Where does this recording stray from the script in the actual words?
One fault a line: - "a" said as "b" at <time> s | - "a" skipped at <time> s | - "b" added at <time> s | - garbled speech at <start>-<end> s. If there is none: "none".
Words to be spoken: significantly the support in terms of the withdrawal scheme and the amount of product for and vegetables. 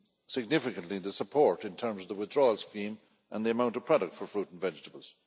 - "fruit" added at 4.3 s